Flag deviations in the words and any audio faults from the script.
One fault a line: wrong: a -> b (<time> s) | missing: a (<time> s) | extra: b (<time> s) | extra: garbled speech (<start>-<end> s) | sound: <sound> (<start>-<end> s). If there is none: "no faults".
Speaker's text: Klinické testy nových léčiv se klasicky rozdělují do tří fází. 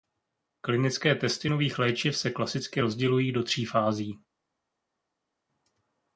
no faults